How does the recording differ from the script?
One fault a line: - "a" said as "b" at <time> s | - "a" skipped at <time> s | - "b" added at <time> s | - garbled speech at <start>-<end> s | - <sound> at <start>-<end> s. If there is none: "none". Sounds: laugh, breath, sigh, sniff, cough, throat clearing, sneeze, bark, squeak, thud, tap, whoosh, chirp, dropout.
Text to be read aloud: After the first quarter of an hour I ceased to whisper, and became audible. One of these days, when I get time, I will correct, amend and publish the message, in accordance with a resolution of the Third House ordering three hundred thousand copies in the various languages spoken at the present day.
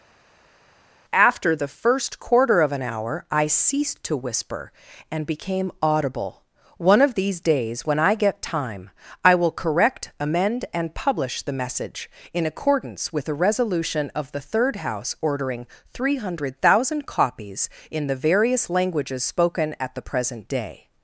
none